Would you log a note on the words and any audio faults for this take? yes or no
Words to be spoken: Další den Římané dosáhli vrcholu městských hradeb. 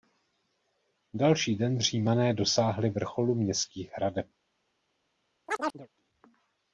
yes